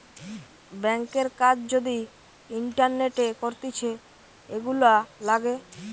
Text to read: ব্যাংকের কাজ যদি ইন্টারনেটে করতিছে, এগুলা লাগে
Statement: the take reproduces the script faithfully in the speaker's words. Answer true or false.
true